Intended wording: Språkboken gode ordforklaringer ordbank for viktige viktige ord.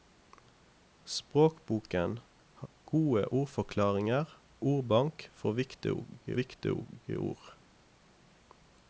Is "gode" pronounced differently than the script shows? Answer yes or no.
no